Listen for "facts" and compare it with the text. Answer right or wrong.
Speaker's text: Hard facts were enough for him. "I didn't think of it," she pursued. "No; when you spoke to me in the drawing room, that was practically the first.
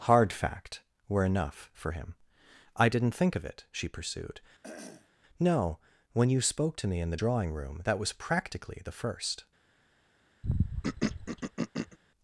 wrong